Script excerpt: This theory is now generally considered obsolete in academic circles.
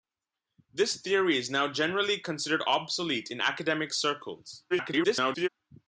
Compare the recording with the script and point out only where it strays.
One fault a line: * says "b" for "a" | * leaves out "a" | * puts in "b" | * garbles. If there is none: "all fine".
* garbles